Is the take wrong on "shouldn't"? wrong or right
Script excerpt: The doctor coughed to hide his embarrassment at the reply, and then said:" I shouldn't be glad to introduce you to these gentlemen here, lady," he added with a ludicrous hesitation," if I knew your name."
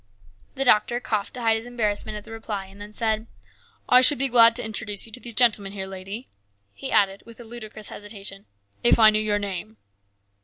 wrong